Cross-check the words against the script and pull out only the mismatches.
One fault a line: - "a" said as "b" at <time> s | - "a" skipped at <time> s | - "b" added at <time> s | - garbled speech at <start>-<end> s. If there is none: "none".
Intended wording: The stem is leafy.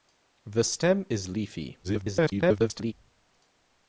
- garbled speech at 1.8-2.9 s